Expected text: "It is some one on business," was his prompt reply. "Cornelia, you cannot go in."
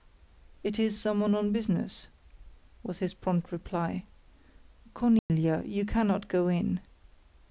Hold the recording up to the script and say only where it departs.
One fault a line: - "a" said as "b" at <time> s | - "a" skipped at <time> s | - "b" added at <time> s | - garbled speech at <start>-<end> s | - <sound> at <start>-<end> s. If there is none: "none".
- dropout at 5.2-5.3 s